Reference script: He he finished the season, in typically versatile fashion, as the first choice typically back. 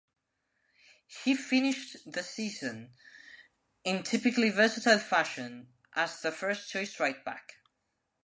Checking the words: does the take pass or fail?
fail